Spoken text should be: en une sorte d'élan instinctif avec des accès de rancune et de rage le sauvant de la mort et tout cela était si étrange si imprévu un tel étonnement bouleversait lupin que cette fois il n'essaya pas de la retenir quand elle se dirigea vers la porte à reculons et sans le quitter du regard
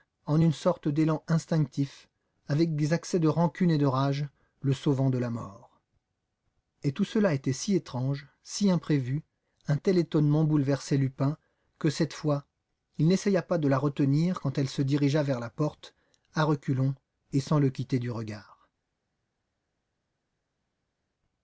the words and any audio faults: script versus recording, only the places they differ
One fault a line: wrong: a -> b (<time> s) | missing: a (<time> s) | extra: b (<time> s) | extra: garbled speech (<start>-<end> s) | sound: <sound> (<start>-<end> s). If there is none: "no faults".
no faults